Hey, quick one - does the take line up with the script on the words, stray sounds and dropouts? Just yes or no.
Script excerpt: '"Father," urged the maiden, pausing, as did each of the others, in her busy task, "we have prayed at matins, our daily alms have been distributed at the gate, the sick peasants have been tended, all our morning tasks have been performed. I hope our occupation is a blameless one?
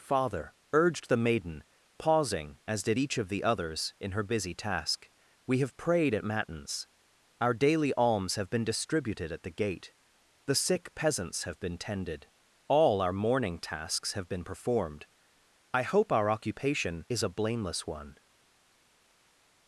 yes